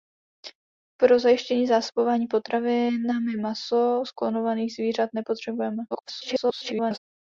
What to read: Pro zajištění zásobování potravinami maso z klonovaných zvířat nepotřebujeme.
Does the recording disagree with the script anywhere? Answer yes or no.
yes